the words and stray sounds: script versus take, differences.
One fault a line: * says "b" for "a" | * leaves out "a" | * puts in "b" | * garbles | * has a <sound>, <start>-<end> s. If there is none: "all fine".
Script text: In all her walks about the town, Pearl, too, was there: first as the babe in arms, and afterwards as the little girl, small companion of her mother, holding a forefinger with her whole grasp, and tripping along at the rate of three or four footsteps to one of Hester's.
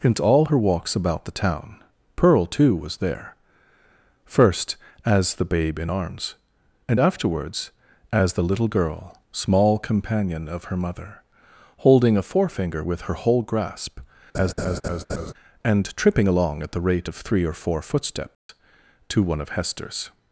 * has a laugh, 14.3-15.3 s
* has a dropout, 18.3-18.5 s